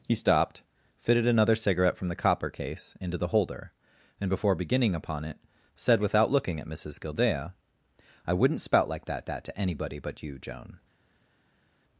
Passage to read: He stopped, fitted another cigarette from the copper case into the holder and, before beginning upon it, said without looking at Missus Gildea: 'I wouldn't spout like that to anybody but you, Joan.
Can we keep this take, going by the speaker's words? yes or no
no